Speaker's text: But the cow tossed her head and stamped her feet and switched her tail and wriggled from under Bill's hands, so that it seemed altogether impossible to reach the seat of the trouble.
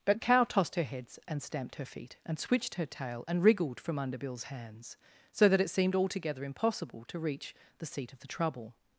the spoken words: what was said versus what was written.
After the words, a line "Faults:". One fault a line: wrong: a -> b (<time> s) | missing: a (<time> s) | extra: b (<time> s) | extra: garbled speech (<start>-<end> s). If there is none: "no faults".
But cow tossed her heads and stamped her feet and switched her tail and wriggled from under Bill's hands, so that it seemed altogether impossible to reach the seat of the trouble.
Faults:
missing: the (0.2 s)
wrong: head -> heads (0.8 s)